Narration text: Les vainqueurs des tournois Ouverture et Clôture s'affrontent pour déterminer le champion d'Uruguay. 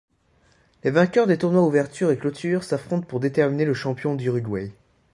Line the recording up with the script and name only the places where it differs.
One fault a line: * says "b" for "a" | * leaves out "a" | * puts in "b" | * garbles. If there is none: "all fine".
all fine